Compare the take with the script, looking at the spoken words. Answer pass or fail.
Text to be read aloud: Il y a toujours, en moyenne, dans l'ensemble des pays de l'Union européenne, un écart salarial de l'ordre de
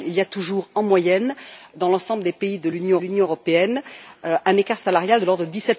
fail